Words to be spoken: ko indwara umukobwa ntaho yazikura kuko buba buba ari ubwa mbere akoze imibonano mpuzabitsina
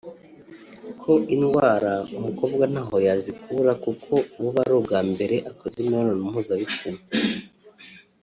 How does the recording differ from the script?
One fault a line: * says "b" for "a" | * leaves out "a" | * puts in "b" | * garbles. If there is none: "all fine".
* leaves out "buba"